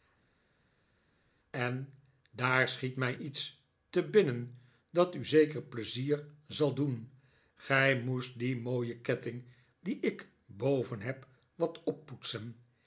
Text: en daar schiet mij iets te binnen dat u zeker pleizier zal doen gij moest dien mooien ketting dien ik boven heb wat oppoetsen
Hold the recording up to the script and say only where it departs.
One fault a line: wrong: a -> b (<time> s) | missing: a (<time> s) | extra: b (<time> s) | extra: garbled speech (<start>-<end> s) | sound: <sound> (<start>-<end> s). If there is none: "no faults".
no faults